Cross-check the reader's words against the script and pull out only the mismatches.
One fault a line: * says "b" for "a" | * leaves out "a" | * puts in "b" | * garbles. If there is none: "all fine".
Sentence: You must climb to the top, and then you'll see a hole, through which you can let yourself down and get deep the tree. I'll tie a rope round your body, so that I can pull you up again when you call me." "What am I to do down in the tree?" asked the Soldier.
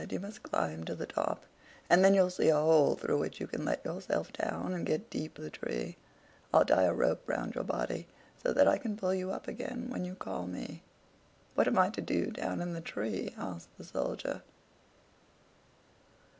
all fine